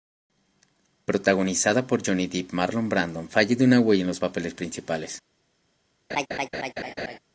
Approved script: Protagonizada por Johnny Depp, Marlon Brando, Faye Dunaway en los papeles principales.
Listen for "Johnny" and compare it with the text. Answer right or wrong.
right